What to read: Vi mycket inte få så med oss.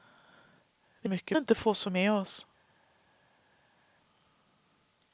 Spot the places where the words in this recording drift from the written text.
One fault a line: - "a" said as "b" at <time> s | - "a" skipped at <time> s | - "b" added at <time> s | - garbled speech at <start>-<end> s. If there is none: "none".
none